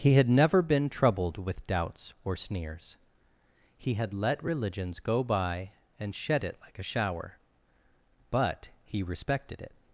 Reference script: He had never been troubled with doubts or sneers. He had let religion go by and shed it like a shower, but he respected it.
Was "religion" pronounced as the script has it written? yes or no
no